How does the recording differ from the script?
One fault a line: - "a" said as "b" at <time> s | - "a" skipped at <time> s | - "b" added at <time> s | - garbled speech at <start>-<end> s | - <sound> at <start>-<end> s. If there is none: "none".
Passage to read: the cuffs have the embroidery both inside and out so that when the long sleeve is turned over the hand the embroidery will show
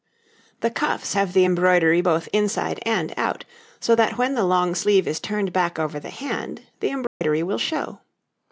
- "back" added at 5.5 s
- dropout at 7.1-7.2 s